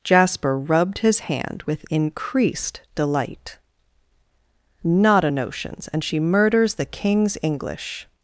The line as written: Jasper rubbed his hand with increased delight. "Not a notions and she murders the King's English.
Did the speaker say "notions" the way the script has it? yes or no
yes